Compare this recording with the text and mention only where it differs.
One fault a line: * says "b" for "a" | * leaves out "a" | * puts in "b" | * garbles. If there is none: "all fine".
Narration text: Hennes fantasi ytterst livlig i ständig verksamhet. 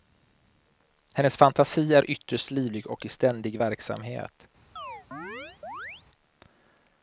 * puts in "är"
* puts in "och"